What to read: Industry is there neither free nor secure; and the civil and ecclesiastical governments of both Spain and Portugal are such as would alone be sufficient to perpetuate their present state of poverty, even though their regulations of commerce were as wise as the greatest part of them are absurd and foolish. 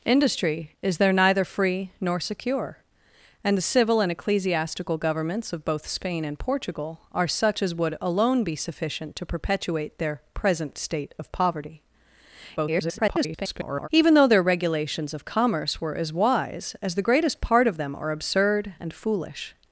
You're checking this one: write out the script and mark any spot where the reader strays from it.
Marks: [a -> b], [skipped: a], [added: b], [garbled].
Industry is there neither free nor secure; and the civil and ecclesiastical governments of both Spain and Portugal are such as would alone be sufficient to perpetuate their present state of poverty, [garbled] even though their regulations of commerce were as wise as the greatest part of them are absurd and foolish.